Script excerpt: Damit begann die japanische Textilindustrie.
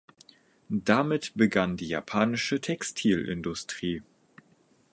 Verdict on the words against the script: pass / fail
pass